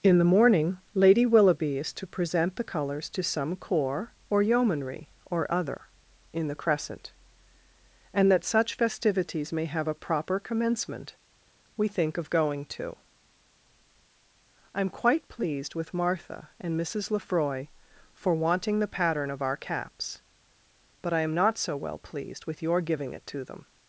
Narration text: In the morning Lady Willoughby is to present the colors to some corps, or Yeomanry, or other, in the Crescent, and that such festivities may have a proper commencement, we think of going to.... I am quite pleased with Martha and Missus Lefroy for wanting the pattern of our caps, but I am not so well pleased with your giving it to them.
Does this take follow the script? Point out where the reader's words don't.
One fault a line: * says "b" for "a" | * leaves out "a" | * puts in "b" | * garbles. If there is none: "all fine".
all fine